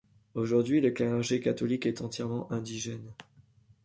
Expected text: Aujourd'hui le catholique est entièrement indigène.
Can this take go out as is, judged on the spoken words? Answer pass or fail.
fail